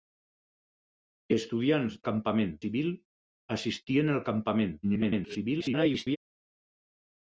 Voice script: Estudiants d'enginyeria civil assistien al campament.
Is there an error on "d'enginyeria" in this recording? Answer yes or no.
yes